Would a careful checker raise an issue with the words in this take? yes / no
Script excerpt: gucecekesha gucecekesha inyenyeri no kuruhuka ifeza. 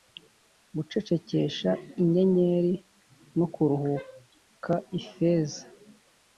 yes